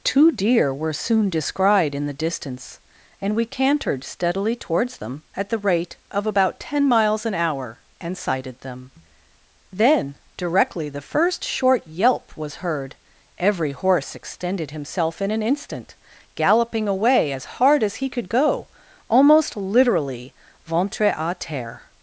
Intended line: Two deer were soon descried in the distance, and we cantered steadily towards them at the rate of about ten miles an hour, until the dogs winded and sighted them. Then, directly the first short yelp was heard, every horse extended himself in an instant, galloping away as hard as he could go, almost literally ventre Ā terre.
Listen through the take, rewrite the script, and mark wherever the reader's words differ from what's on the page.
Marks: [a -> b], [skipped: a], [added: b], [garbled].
Two deer were soon descried in the distance, and we cantered steadily towards them at the rate of about ten miles an hour, [skipped: until the dogs winded] and sighted them. Then, directly the first short yelp was heard, every horse extended himself in an instant, galloping away as hard as he could go, almost literally ventre Ā terre.